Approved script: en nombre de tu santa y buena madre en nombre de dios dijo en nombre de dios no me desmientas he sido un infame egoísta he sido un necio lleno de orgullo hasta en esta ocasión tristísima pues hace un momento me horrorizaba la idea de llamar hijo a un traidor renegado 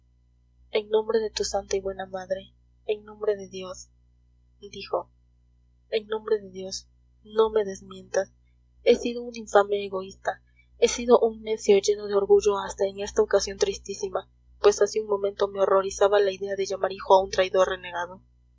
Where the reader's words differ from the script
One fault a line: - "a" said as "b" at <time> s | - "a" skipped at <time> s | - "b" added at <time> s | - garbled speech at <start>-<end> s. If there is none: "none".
none